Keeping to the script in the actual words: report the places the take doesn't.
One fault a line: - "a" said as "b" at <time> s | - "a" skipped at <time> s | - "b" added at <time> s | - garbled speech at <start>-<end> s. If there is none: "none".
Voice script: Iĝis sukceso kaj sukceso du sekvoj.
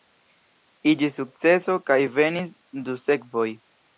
- "sukceso" said as "venis" at 2.2 s